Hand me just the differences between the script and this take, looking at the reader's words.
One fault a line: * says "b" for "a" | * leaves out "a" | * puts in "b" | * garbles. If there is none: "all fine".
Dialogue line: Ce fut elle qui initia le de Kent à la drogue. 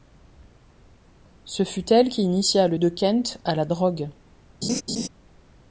all fine